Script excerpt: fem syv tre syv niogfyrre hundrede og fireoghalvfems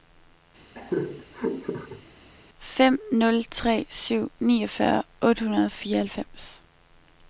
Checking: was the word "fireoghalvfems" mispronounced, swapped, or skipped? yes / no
no